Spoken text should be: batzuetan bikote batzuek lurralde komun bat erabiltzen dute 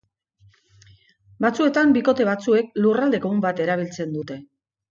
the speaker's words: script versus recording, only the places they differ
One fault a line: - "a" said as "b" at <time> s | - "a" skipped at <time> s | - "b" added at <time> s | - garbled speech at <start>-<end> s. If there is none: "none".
none